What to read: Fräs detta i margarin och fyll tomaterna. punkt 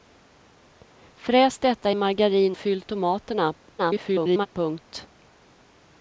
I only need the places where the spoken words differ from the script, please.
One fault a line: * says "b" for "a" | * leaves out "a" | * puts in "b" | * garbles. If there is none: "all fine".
* leaves out "och"
* garbles